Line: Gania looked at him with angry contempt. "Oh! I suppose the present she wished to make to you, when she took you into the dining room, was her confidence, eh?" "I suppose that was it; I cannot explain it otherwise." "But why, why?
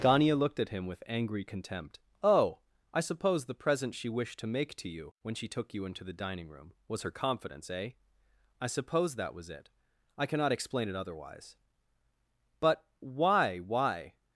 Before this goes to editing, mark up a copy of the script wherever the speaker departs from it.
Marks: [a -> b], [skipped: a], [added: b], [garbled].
Gania looked at him with angry contempt. "Oh! I suppose the present she wished to make to you, when she took you into the dining room, was her confidence, eh?" "I suppose that was it; I cannot explain it otherwise." "But why, why?